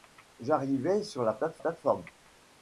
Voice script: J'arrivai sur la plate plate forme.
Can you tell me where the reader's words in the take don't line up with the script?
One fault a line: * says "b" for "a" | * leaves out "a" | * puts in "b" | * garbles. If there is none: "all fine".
all fine